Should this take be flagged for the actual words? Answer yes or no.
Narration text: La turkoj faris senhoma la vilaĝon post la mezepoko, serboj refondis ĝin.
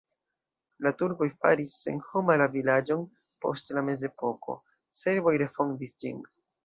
no